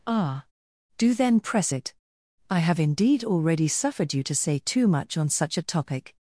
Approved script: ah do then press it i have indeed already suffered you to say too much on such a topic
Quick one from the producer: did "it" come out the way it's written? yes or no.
yes